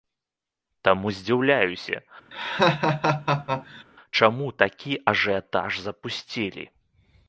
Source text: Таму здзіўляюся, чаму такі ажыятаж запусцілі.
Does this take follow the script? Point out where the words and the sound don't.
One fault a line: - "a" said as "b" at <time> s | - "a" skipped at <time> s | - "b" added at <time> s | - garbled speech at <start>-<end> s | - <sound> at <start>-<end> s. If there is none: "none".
- laugh at 2.3-3.8 s